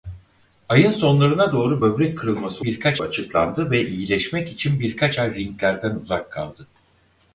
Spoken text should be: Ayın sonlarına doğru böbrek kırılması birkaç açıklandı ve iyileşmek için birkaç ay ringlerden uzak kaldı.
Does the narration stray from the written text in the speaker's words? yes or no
no